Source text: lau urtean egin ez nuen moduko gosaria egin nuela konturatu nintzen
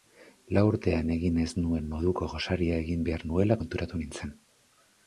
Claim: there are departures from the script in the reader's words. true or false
true